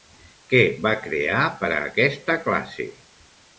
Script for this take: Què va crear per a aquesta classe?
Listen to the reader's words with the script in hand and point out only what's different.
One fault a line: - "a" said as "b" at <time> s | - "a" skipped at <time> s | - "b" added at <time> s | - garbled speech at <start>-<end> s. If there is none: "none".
none